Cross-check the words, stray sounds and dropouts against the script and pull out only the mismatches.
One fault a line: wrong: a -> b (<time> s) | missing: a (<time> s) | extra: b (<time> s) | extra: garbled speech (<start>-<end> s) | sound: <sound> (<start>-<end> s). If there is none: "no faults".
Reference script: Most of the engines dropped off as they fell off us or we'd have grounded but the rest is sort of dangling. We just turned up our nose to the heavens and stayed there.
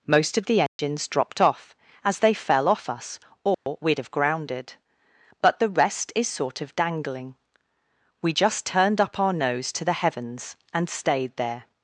sound: dropout (0.7-0.8 s)
sound: dropout (3.5-3.7 s)